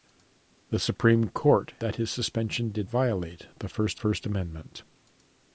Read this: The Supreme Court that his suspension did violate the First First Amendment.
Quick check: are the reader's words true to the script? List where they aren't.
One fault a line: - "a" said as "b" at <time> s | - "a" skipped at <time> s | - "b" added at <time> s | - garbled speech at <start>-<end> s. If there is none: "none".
none